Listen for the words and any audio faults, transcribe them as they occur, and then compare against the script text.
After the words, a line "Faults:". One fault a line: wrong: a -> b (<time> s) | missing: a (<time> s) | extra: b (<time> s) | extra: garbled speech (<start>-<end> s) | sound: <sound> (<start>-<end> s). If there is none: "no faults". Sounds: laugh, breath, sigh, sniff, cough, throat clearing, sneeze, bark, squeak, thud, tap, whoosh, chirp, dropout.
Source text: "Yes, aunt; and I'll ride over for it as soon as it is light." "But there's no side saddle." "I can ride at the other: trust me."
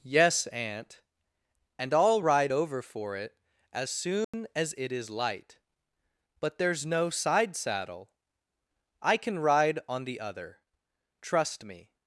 "Yes, aunt; and I'll ride over for it as soon as it is light." "But there's no side saddle." "I can ride on the other: trust me."
Faults:
sound: dropout (4.2-4.3 s)
wrong: at -> on (9.9 s)